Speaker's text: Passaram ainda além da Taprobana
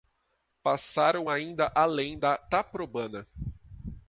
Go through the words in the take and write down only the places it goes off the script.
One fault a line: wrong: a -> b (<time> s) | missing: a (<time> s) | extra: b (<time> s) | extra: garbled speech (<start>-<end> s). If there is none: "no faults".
no faults